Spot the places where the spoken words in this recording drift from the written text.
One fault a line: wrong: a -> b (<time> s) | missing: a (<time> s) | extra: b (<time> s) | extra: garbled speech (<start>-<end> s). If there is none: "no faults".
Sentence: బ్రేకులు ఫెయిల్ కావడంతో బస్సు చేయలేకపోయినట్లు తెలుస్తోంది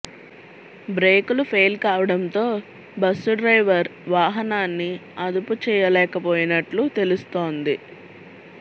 extra: డ్రైవర్ వాహనాన్ని అదుపు (3.4 s)